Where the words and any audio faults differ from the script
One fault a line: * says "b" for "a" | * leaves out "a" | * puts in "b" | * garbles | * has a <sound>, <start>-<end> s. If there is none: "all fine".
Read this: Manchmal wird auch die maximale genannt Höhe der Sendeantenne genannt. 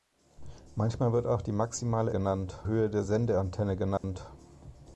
* has a dropout, 4.0-4.0 s